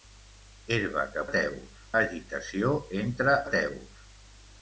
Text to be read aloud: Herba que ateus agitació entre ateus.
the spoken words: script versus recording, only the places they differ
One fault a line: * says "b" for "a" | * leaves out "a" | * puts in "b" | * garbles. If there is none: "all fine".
all fine